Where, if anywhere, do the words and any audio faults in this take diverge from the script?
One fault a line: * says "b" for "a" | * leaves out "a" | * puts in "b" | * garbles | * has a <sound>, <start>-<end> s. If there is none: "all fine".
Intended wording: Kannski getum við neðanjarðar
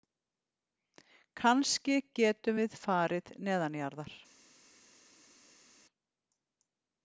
* puts in "farið"